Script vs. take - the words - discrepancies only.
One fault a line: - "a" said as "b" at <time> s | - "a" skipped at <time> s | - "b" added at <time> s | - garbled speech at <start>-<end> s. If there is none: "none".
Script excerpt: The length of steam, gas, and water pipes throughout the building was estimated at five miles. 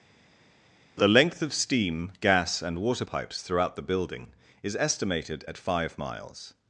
- "was" said as "is" at 4.6 s